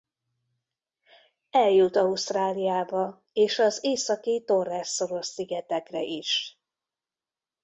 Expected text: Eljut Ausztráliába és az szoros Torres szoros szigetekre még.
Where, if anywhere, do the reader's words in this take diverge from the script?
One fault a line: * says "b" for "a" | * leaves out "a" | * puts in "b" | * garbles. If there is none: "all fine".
* says "északi" for "szoros"
* says "is" for "még"